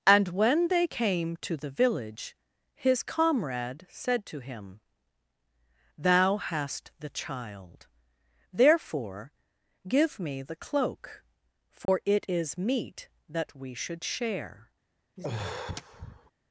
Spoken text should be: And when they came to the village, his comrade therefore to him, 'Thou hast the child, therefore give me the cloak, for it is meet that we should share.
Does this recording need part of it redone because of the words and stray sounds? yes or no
yes